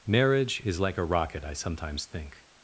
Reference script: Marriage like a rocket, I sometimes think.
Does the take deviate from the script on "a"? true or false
false